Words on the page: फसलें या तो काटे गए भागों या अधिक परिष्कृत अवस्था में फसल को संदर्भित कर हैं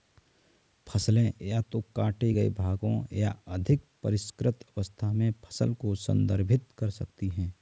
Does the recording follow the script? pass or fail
fail